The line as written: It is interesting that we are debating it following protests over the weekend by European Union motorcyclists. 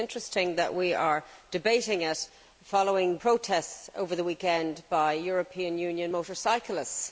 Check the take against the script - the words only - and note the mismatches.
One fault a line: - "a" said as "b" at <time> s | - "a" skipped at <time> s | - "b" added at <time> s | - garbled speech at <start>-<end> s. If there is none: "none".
none